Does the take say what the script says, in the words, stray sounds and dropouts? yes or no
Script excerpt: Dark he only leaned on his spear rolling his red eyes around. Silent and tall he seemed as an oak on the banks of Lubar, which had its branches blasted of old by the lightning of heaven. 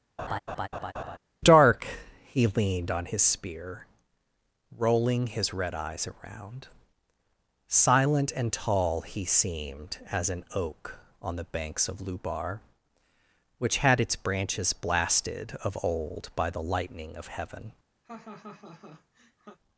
no